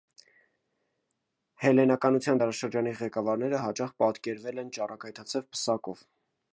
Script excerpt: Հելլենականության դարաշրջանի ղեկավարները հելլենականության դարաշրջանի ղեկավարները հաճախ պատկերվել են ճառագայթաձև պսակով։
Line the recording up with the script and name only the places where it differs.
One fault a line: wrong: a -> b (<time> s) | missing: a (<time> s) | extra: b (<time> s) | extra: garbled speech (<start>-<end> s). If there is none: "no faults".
missing: հելլենականության դարաշրջանի ղեկավարները (3.6 s)